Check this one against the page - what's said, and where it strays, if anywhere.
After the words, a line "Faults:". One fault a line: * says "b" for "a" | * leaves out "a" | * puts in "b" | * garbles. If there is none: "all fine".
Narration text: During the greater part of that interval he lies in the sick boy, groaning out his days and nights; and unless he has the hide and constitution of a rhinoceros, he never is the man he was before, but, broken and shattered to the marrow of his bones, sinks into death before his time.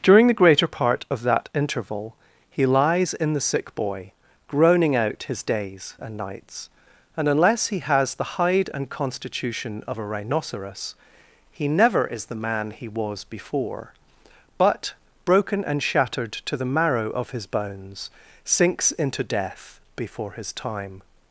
During the greater part of that interval he lies in the sick boy, groaning out his days and nights; and unless he has the hide and constitution of a rhinoceros, he never is the man he was before, but, broken and shattered to the marrow of his bones, sinks into death before his time.
Faults:
all fine